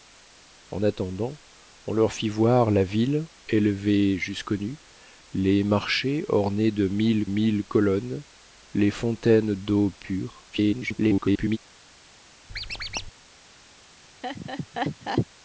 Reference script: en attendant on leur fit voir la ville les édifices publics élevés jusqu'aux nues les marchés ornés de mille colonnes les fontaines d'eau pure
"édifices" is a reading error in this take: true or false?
true